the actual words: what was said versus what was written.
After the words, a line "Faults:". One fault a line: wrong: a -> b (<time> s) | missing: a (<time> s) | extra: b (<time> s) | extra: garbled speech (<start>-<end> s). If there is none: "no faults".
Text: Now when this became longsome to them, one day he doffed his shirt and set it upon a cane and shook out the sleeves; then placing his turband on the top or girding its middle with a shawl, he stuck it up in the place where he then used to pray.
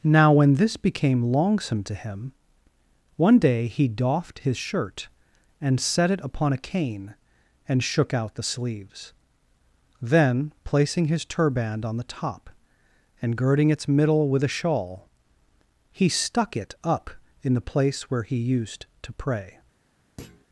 Now when this became longsome to him, one day he doffed his shirt and set it upon a cane and shook out the sleeves; then placing his turband on the top and girding its middle with a shawl, he stuck it up in the place where he used to pray.
Faults:
wrong: them -> him (1.9 s)
wrong: or -> and (13.2 s)
missing: then (18.4 s)